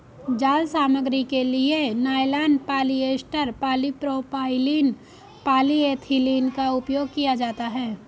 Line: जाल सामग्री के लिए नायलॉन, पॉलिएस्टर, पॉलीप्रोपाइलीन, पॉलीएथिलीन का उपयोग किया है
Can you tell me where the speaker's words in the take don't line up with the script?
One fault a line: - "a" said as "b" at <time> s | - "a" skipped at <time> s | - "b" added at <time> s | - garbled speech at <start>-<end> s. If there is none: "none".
- "जाता" added at 7.3 s